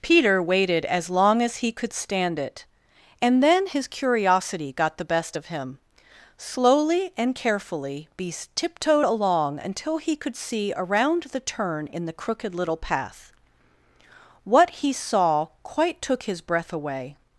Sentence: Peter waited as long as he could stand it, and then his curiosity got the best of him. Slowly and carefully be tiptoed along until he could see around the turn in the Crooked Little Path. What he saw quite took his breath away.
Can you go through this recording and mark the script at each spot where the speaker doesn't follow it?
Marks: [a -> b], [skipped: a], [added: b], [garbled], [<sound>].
Peter waited as long as he could stand it, and then his curiosity got the best of him. Slowly and carefully [be -> beast] tiptoed along until he could see around the turn in the Crooked Little Path. What he saw quite took his breath away.